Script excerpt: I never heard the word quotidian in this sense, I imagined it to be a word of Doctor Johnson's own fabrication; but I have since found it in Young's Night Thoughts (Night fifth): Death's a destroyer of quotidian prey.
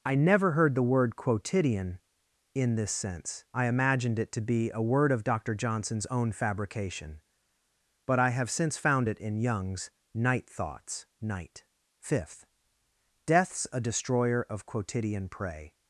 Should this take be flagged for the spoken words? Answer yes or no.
no